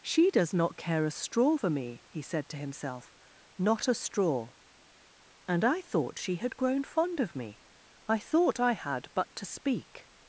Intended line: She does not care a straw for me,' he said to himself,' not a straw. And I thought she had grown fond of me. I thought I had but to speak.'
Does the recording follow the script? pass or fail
pass